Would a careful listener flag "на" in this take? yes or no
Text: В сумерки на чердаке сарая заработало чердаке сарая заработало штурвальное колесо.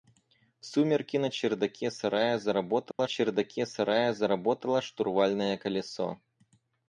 no